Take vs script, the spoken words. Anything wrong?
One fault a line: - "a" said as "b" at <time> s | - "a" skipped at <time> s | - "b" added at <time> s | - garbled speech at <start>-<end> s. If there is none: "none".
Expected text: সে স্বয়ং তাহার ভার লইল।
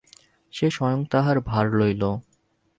none